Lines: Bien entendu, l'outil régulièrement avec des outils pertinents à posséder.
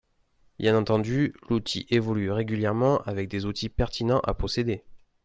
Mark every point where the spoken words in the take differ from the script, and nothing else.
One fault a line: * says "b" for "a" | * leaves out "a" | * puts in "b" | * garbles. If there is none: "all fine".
* puts in "évolue"